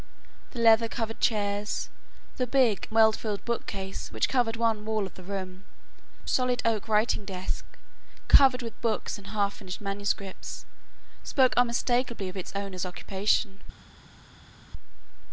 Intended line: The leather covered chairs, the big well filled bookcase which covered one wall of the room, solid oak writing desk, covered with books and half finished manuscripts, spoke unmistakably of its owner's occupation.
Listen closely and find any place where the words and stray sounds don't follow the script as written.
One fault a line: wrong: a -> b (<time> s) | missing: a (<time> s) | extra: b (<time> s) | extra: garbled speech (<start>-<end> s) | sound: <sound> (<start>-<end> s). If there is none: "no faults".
no faults